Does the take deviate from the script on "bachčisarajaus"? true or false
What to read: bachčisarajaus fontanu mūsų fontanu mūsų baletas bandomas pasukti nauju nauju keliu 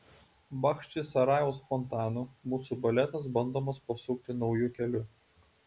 false